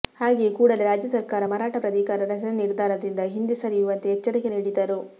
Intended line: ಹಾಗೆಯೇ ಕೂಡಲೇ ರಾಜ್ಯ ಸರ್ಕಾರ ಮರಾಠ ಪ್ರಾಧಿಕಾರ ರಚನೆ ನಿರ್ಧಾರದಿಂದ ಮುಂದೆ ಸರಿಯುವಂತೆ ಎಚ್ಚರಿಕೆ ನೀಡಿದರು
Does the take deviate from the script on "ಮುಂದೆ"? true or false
true